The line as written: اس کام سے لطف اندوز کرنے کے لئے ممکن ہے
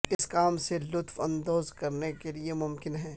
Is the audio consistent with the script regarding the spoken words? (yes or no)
yes